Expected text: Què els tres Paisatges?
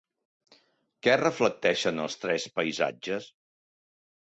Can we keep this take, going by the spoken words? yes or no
no